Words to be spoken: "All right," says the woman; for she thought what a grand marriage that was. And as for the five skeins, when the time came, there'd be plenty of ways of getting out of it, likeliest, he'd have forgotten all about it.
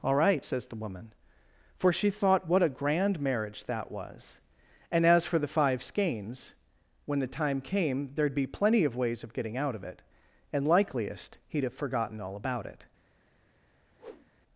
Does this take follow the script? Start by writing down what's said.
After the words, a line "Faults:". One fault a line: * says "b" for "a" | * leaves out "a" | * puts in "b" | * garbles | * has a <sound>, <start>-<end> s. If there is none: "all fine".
"All right," says the woman; for she thought what a grand marriage that was. And as for the five skeins, when the time came, there'd be plenty of ways of getting out of it, and likeliest, he'd have forgotten all about it.
Faults:
* puts in "and"
* has a whoosh, 14.0-14.3 s